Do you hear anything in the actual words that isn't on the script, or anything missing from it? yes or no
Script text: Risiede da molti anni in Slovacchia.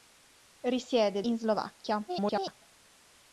yes